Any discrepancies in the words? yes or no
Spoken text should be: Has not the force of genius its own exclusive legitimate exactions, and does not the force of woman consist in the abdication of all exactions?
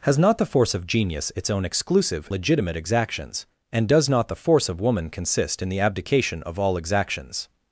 no